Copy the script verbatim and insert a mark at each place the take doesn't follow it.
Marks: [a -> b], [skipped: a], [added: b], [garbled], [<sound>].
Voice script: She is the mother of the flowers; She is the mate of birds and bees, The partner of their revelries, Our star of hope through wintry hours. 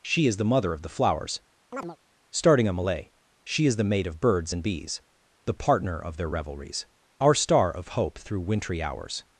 She is the mother of the flowers; [chirp] [added: starting a malay] She is the mate of birds and bees, The partner of their revelries, Our star of hope through wintry hours.